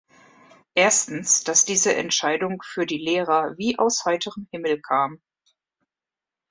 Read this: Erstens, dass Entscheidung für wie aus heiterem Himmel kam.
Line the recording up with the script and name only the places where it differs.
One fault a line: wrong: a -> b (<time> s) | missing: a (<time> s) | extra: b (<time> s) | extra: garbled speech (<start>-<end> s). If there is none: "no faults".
extra: diese (1.6 s)
extra: die Lehrer (2.9 s)